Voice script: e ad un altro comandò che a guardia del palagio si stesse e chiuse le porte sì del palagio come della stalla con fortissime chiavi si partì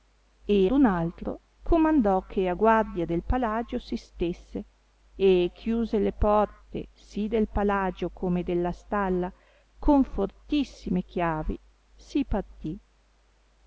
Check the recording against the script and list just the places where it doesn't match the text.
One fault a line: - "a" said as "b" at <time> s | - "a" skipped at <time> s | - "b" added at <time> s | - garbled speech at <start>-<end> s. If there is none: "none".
- "ad" skipped at 0.7 s